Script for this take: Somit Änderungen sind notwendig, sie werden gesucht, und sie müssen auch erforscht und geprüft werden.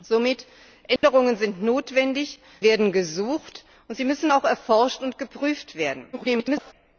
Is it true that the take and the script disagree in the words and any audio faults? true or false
true